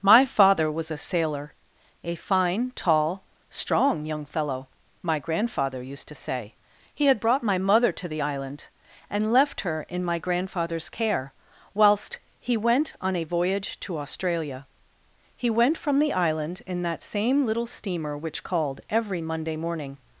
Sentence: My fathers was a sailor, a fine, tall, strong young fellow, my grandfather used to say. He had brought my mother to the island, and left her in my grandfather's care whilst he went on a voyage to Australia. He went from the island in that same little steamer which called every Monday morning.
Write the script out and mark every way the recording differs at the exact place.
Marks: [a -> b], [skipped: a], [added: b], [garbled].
My [fathers -> father] was a sailor, a fine, tall, strong young fellow, my grandfather used to say. He had brought my mother to the island, and left her in my grandfather's care whilst he went on a voyage to Australia. He went from the island in that same little steamer which called every Monday morning.